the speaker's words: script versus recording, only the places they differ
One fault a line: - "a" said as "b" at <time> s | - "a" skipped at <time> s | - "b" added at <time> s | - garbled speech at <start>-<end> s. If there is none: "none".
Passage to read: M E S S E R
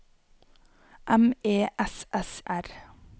- "E" skipped at 2.4 s